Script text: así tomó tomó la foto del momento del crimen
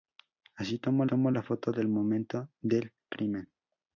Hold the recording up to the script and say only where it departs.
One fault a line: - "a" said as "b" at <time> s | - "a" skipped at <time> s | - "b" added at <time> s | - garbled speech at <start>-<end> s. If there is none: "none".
none